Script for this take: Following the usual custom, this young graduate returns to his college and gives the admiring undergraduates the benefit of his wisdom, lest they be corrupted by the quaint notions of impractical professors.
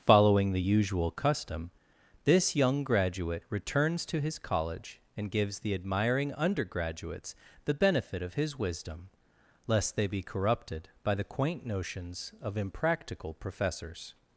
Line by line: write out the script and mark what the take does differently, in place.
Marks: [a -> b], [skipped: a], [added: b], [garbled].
Following the usual custom, this young graduate returns to his college and gives the admiring undergraduates the benefit of his wisdom, lest they be corrupted by the quaint notions of impractical professors.